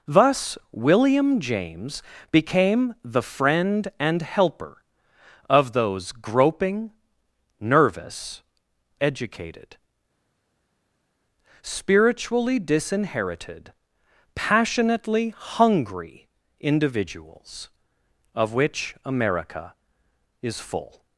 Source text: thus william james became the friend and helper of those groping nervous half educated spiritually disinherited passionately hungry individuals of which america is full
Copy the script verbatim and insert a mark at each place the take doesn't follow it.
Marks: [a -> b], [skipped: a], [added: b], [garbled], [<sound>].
thus william james became the friend and helper of those groping nervous [skipped: half] educated spiritually disinherited passionately hungry individuals of which america is full